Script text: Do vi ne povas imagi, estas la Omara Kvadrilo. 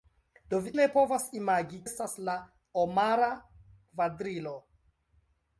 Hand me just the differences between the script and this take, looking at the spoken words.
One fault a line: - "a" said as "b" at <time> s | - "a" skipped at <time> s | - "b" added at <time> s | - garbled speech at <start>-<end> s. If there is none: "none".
none